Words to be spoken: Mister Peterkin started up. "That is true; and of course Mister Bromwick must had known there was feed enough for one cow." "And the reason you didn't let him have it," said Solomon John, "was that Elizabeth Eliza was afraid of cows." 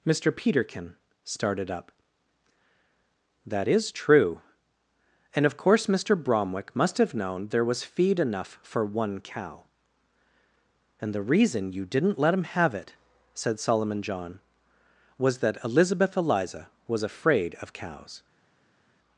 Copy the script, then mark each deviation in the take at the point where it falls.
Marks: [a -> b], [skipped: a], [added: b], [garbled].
Mister Peterkin started up. "That is true; and of course Mister Bromwick must [had -> have] known there was feed enough for one cow." "And the reason you didn't let him have it," said Solomon John, "was that Elizabeth Eliza was afraid of cows."